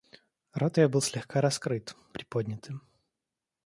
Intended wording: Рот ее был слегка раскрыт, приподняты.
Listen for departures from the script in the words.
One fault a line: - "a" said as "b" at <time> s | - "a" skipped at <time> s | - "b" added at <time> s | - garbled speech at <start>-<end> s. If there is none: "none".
none